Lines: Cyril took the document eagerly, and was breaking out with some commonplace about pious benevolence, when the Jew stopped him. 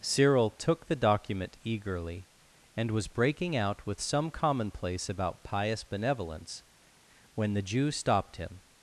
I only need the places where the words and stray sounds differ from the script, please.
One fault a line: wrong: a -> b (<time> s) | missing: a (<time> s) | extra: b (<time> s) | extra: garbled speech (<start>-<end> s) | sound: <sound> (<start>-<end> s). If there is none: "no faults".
no faults